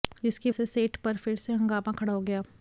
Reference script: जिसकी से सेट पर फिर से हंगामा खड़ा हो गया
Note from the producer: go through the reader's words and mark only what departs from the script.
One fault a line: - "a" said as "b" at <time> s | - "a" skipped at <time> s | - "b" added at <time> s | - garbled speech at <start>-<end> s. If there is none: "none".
none